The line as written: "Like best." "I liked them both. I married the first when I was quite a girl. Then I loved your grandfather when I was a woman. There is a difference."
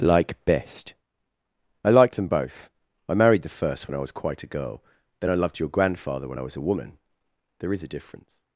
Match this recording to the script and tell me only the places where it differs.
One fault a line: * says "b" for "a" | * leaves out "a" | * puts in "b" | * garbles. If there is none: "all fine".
all fine